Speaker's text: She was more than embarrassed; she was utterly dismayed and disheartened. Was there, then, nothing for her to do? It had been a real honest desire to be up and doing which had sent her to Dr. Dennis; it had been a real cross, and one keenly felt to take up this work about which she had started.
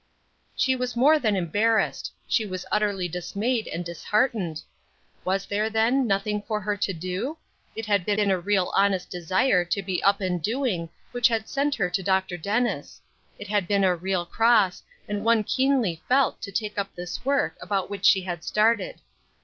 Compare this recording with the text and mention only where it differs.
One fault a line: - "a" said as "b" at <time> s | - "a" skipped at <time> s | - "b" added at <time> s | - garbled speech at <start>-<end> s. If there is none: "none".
- "been" added at 8.1 s